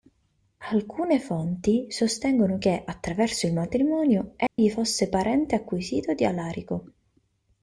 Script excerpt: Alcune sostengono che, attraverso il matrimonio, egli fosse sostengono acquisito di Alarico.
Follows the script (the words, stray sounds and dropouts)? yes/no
no